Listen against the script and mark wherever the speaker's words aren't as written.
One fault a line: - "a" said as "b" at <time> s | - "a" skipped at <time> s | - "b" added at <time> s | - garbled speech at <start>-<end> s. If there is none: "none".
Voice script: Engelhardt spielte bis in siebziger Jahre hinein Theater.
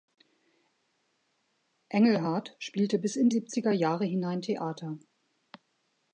none